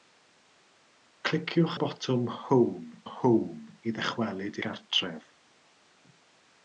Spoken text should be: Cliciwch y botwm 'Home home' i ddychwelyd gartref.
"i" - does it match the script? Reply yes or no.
yes